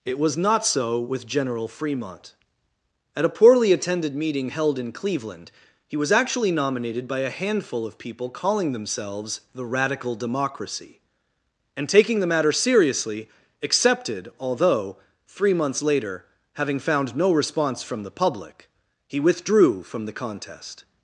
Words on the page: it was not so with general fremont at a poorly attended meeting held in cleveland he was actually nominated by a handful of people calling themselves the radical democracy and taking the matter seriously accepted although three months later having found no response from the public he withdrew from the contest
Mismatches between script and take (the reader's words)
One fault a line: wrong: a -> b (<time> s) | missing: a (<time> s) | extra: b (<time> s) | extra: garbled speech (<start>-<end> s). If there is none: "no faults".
no faults